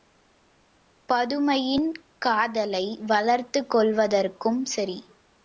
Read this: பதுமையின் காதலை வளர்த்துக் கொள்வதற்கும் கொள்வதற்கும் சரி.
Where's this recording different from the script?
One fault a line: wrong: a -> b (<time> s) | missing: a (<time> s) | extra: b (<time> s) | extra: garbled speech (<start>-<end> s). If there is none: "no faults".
missing: கொள்வதற்கும் (4.6 s)